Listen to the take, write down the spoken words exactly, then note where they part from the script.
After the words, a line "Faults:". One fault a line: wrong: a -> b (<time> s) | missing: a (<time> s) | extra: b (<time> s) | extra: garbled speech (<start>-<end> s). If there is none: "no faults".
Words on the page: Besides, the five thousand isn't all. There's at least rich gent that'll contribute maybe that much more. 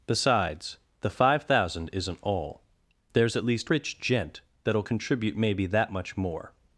Besides, the five thousand isn't all. There's at least rich gent that'll contribute maybe that much more.
Faults:
no faults